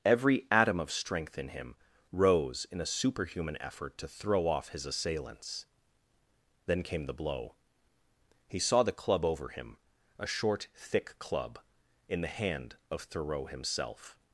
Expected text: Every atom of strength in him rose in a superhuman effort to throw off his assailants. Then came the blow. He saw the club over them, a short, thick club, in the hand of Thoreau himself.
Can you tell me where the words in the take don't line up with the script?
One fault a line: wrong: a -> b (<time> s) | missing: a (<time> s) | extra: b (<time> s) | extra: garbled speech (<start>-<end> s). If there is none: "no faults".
wrong: them -> him (9.5 s)